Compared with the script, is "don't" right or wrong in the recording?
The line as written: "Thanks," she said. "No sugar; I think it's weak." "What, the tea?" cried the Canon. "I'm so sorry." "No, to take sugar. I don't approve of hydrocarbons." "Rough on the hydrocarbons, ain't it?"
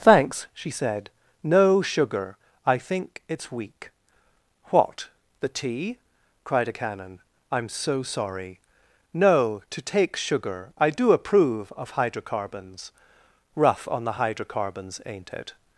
wrong